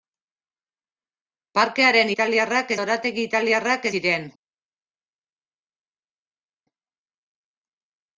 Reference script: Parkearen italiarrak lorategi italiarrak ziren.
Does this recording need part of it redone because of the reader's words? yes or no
no